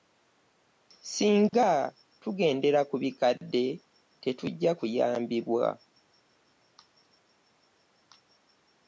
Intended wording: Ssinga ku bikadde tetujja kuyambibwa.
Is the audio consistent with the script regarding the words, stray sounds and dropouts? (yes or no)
no